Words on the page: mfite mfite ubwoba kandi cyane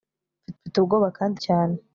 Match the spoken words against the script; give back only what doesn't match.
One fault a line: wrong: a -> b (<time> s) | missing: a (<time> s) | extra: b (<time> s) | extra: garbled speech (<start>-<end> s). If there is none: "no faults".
no faults